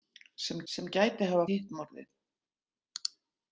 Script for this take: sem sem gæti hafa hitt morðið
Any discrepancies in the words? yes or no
no